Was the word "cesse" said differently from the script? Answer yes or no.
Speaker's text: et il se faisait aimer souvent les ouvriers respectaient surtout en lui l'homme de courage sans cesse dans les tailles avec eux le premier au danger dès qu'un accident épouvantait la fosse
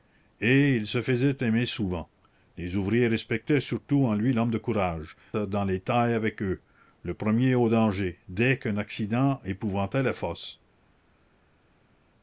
yes